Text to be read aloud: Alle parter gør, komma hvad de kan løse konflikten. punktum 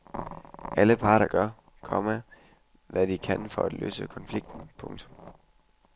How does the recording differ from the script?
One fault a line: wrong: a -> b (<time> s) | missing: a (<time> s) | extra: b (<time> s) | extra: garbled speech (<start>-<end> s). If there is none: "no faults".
extra: for at (3.5 s)